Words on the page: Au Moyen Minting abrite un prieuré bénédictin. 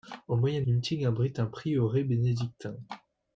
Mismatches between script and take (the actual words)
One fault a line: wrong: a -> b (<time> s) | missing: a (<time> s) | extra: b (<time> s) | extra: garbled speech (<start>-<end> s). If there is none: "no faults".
no faults